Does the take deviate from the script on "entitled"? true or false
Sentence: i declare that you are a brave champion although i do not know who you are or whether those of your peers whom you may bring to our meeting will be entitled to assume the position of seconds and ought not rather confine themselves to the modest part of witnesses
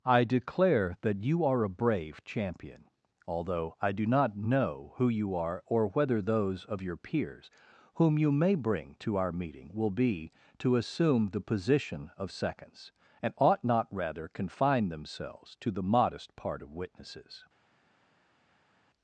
true